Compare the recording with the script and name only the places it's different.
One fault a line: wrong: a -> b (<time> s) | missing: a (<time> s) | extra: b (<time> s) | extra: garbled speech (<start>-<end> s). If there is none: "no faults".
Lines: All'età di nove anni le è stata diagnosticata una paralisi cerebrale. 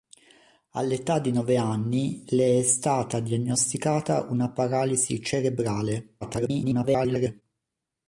extra: garbled speech (6.2-7.4 s)